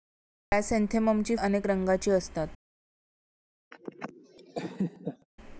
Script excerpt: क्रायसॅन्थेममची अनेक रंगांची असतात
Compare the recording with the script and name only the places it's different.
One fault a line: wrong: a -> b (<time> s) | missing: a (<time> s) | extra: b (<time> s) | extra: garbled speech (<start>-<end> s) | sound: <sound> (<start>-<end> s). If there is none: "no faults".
sound: laugh (3.7-5.3 s)